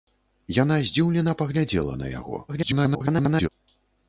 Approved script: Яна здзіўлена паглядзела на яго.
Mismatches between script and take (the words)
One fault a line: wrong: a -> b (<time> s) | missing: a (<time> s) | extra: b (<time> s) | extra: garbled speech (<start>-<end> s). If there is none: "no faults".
extra: garbled speech (2.5-3.5 s)